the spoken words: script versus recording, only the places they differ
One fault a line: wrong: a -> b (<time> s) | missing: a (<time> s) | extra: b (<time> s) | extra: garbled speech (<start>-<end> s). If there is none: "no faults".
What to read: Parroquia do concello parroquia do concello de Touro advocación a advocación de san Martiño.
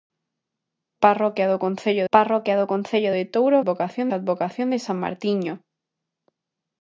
no faults